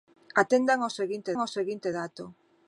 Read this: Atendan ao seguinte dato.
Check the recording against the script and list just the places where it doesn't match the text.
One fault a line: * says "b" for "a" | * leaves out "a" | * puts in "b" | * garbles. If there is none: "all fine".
* puts in "ao seguinte"